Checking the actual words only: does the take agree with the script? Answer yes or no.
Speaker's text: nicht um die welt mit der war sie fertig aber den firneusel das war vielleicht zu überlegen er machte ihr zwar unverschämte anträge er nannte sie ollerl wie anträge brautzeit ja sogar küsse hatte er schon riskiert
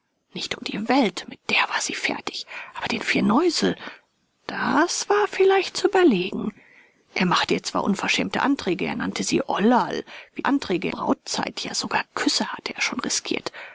yes